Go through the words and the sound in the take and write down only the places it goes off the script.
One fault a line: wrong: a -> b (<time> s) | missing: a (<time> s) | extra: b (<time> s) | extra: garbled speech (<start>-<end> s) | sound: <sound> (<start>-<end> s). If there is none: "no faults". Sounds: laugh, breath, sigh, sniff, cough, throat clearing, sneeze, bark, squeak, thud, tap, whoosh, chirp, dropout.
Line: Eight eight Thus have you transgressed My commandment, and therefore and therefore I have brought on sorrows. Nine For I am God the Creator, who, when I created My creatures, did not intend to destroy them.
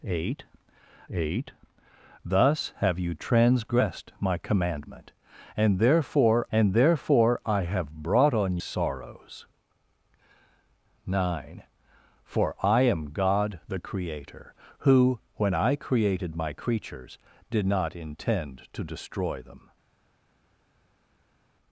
no faults